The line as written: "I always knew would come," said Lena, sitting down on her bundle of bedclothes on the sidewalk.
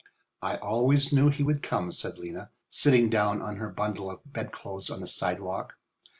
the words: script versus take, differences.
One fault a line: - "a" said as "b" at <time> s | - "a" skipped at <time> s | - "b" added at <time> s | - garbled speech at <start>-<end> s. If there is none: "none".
- "he" added at 1.3 s